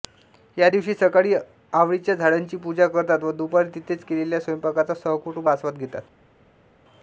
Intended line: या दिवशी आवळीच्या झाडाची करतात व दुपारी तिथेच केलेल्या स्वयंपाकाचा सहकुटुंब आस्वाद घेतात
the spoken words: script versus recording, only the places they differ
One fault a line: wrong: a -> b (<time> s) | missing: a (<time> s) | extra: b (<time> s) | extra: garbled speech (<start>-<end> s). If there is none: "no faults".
extra: सकाळी (0.9 s)
extra: पूजा (2.6 s)